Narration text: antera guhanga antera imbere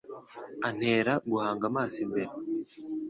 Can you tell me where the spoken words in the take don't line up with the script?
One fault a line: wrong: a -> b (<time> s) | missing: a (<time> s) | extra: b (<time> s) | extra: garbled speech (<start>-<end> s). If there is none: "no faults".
wrong: antera -> amaso (1.7 s)